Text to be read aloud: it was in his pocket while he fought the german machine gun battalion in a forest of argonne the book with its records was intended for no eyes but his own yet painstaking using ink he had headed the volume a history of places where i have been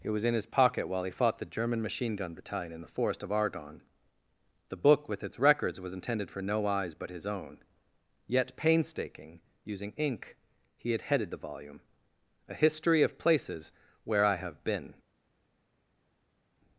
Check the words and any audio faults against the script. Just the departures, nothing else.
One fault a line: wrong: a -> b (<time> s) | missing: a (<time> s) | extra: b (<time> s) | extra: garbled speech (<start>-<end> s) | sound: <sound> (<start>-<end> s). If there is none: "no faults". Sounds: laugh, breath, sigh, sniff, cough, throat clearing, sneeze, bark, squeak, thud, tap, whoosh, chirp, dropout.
wrong: a -> the (2.8 s)